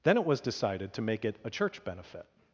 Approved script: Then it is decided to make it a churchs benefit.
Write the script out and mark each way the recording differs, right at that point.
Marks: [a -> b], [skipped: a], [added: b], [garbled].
Then it [is -> was] decided to make it a [churchs -> church] benefit.